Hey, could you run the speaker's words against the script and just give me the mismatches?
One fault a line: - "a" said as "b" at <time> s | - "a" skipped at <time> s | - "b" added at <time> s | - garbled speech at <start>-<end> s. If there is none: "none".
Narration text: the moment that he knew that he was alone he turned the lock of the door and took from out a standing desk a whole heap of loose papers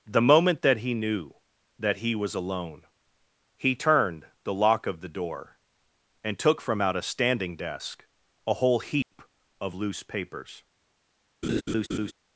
none